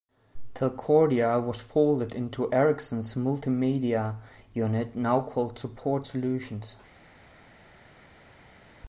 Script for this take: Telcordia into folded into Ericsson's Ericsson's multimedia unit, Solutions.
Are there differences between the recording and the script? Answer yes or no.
yes